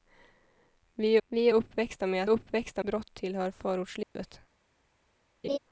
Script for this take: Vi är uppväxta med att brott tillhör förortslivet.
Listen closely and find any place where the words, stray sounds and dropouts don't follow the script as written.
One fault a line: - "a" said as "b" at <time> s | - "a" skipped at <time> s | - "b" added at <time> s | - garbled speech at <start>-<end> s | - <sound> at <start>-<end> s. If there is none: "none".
- "vi" added at 1.3 s
- "att" said as "uppväxta" at 2.3 s
- dropout at 4.0-4.2 s
- laugh at 5.4-5.6 s